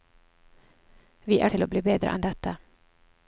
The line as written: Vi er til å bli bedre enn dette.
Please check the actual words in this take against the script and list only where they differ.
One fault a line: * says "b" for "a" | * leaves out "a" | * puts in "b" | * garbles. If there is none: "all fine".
all fine